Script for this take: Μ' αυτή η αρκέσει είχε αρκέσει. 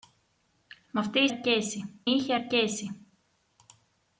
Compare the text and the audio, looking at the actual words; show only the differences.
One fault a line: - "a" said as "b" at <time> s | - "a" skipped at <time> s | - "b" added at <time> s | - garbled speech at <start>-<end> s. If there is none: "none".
none